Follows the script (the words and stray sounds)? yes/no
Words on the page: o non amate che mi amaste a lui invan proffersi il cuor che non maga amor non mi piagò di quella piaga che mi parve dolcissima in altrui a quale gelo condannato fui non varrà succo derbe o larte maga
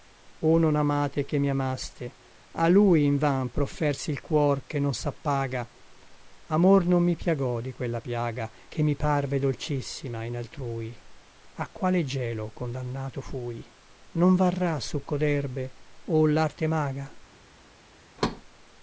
no